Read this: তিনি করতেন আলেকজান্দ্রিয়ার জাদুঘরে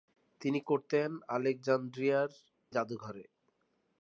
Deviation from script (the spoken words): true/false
false